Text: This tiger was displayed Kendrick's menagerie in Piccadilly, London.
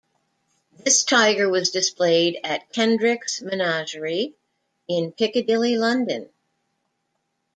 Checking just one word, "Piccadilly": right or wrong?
right